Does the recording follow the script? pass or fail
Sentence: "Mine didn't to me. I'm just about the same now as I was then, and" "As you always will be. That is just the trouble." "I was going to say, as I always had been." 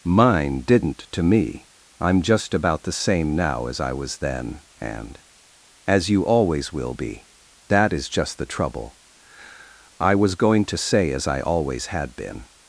pass